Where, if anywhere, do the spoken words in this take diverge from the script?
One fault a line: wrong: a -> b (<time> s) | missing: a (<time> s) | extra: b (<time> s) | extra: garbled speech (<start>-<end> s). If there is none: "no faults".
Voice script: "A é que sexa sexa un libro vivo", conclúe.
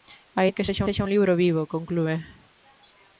no faults